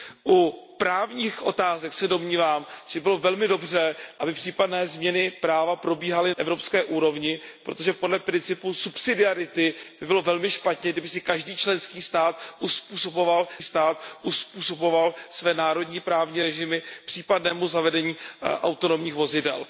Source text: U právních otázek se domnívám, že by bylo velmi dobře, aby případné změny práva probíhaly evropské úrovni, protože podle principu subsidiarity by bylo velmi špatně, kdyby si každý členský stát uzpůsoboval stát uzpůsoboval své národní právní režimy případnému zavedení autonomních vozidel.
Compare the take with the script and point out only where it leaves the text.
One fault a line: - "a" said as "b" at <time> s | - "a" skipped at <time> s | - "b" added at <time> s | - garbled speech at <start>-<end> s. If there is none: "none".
none